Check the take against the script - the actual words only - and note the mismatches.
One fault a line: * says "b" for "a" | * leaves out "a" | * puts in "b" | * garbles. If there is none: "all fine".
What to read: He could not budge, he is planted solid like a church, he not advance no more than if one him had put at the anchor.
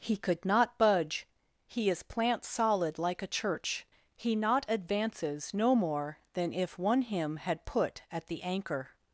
* says "plant" for "planted"
* says "advances" for "advance"